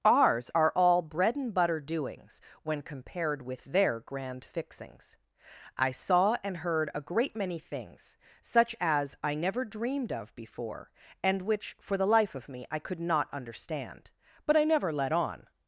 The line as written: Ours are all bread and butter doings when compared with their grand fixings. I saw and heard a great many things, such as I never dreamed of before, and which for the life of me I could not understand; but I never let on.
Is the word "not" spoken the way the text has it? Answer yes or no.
yes